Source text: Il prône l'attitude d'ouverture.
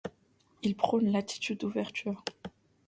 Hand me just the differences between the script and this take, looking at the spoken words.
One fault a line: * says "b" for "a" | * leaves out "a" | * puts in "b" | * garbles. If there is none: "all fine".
all fine